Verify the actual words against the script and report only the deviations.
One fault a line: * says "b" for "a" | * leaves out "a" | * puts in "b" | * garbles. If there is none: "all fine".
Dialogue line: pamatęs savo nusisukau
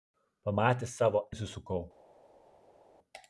all fine